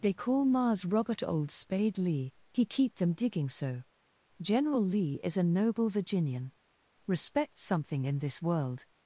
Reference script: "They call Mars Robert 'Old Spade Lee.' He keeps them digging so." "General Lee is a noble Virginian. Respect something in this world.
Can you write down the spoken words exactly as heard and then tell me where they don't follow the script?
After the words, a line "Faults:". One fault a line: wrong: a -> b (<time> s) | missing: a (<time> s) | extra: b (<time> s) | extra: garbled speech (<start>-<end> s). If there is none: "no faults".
"They call Mars Robert 'Old Spade Lee.' He keep them digging so." "General Lee is a noble Virginian. Respect something in this world.
Faults:
wrong: keeps -> keep (2.6 s)